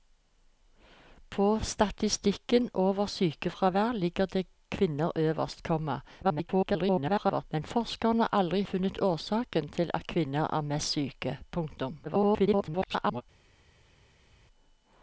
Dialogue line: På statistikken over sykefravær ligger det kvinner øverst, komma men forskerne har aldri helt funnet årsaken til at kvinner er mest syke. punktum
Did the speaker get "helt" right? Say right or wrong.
wrong